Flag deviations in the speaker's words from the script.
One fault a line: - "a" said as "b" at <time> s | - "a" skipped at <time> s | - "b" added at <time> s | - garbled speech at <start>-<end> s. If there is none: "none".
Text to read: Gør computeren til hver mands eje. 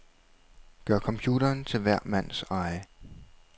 none